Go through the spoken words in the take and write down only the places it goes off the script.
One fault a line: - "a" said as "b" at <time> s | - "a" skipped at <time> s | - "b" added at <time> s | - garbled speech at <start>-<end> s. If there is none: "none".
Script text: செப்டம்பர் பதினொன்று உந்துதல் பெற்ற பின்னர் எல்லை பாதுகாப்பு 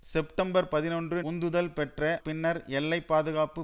none